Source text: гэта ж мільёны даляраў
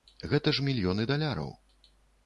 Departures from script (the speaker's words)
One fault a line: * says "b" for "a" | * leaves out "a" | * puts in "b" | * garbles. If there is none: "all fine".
all fine